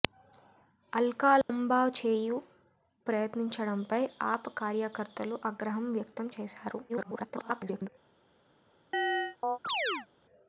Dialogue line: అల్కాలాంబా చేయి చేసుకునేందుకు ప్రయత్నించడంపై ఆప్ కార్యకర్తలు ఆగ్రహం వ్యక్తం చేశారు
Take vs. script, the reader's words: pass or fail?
fail